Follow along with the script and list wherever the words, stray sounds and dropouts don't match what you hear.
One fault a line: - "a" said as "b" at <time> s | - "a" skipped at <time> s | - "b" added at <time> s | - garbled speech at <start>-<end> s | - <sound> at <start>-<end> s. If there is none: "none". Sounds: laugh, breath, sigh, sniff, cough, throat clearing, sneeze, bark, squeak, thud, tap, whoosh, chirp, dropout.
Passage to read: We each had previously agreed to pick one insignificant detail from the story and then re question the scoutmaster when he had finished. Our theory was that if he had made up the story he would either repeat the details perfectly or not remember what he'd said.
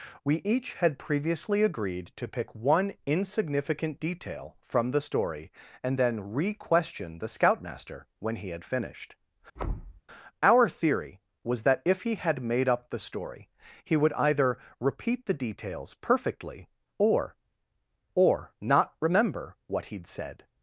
- thud at 9.6-10.0 s
- "or" added at 18.1 s